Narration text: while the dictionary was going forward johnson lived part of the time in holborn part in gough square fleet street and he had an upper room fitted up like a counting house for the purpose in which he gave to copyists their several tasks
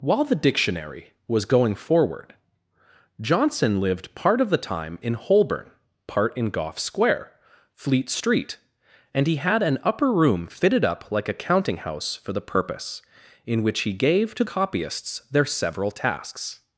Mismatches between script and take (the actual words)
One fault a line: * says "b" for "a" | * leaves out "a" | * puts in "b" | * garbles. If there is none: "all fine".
all fine